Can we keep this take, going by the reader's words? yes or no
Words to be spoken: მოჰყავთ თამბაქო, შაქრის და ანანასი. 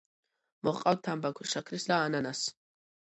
yes